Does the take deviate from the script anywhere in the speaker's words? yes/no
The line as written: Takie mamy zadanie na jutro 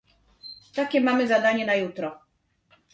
no